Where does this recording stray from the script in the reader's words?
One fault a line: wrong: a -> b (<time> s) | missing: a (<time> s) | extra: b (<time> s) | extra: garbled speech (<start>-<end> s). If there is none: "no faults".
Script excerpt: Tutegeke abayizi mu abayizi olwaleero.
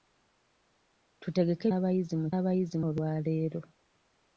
no faults